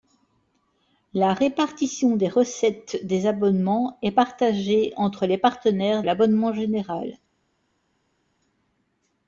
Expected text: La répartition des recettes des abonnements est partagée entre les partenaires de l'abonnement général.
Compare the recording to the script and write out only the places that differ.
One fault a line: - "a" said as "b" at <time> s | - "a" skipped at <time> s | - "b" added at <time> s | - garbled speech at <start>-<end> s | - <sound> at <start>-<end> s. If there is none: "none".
- "de" skipped at 6.0 s